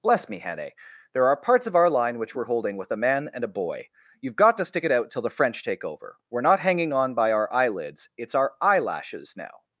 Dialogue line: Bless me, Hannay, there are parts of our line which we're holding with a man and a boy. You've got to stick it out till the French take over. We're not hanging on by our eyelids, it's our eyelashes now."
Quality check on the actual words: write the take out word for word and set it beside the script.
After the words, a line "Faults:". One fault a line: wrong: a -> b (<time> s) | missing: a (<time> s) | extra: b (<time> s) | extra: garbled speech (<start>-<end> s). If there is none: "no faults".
Bless me, Hannay, there are parts of our line which we're holding with a man and a boy. You've got to stick it out till the French take over. We're not hanging on by our eyelids, it's our eyelashes now."
Faults:
no faults